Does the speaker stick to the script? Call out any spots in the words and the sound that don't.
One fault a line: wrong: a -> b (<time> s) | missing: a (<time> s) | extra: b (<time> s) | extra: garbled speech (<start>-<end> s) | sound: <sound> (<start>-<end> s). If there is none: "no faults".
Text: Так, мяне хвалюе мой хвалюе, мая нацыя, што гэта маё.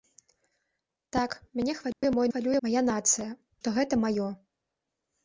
sound: dropout (1.9-2.0 s)